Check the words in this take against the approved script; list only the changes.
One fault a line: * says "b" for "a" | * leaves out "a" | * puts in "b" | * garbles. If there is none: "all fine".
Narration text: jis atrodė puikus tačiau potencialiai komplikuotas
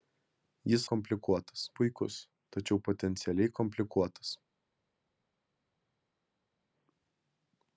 * says "komplikuotas" for "atrodė"